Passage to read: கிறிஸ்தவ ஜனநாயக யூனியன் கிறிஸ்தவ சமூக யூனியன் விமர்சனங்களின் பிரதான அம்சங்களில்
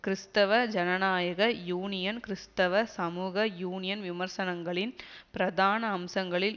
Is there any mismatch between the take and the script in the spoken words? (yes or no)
no